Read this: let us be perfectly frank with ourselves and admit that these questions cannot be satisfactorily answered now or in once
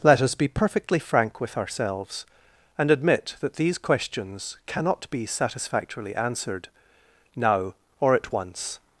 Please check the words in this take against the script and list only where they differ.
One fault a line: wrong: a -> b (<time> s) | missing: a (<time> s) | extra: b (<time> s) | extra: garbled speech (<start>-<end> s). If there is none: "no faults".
wrong: in -> at (8.2 s)